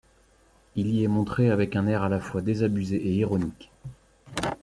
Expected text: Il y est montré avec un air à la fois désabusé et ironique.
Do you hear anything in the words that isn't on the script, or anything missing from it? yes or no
no